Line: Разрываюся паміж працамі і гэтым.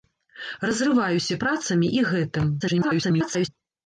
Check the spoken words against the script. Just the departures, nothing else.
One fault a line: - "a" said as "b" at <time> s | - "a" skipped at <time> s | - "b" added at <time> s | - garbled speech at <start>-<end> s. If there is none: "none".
- "паміж" skipped at 1.4 s
- garbled speech at 2.6-3.5 s